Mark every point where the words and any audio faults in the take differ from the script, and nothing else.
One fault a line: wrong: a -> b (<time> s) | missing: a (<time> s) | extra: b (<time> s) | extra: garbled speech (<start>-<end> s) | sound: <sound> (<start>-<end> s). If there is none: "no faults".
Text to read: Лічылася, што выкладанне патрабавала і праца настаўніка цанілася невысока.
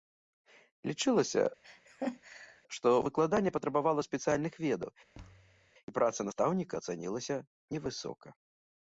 sound: laugh (1.6-2.6 s)
extra: спецыяльных ведаў (4.1 s)
sound: thud (5.1-5.7 s)